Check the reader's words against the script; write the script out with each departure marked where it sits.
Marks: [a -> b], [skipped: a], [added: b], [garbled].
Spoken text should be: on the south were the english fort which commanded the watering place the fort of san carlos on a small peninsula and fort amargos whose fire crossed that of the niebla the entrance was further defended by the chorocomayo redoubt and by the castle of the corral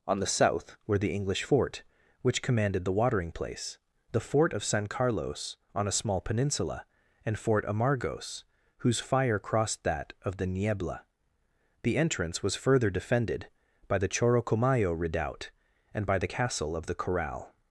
on the south were the english fort which commanded the watering place the fort of san carlos on a small peninsula and fort amargos whose fire crossed that of the niebla the entrance was further defended by the chorocomayo redoubt and by the castle of the corral